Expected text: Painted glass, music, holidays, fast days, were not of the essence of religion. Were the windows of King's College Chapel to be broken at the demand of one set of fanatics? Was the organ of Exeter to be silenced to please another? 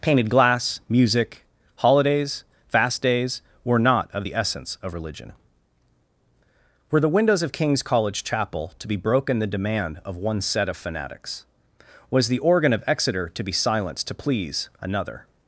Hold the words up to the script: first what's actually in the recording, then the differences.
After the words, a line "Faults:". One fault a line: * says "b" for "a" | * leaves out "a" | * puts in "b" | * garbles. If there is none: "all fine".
Painted glass, music, holidays, fast days, were not of the essence of religion. Were the windows of King's College Chapel to be broken the demand of one set of fanatics? Was the organ of Exeter to be silenced to please another?
Faults:
* leaves out "at"